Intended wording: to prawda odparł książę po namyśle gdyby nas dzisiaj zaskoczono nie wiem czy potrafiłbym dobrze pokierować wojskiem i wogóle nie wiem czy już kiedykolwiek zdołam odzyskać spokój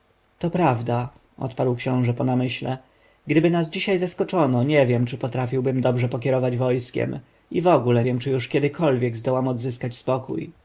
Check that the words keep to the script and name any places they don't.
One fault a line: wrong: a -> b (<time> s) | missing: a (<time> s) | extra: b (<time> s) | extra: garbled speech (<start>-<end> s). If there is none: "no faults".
missing: nie (8.0 s)